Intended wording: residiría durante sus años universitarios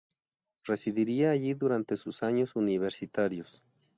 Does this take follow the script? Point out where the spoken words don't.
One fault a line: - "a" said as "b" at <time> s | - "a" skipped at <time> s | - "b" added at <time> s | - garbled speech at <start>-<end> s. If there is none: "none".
- "allí" added at 1.3 s